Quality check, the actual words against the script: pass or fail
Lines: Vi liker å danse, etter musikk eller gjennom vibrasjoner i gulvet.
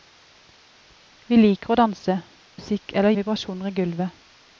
fail